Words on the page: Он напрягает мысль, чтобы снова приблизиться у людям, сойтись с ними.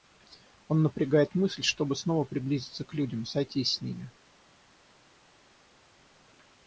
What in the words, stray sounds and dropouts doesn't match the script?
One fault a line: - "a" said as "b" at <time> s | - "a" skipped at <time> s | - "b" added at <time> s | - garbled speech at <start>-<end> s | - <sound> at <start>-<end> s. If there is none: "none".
- "у" said as "к" at 2.8 s